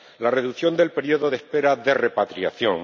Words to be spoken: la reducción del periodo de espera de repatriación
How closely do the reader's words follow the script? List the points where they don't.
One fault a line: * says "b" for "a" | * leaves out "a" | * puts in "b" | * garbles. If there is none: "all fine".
all fine